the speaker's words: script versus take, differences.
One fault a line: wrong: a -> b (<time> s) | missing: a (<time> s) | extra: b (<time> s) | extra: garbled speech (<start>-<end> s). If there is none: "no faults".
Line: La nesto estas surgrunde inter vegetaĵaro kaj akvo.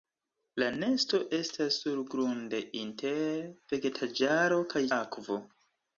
no faults